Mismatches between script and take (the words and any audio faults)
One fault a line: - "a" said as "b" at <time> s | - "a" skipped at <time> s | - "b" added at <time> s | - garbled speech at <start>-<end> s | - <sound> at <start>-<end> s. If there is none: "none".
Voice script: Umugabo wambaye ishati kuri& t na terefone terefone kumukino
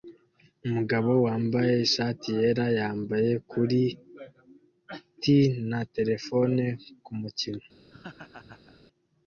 - "yera yambaye" added at 2.4 s
- "terefone" skipped at 6.6 s
- laugh at 7.9-8.9 s